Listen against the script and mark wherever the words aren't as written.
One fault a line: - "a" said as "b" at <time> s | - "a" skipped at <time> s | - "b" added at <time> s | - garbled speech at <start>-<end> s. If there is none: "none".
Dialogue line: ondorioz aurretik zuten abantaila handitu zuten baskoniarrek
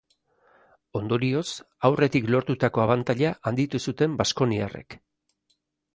- "zuten" said as "lortutako" at 2.4 s